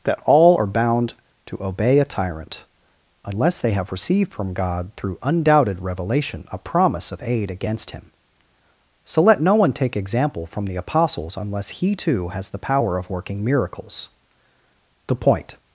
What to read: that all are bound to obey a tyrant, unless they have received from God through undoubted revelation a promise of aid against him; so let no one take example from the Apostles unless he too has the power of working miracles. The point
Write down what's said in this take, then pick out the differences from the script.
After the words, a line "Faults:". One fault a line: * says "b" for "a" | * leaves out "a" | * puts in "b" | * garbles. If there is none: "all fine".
that all are bound to obey a tyrant, unless they have received from God through undoubted revelation a promise of aid against him; so let no one take example from the Apostles unless he too has the power of working miracles. The point
Faults:
all fine